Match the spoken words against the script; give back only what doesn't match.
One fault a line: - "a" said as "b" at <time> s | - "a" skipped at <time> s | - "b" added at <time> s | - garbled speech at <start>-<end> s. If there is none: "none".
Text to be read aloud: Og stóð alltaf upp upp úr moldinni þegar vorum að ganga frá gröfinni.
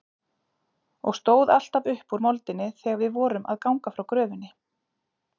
- "upp" skipped at 2.1 s
- "við" added at 3.0 s